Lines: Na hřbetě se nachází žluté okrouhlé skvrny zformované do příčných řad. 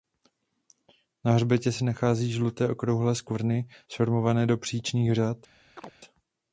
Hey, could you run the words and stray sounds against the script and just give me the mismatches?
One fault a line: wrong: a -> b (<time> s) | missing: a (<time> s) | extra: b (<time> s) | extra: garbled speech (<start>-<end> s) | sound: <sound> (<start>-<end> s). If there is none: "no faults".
sound: chirp (5.8-5.9 s)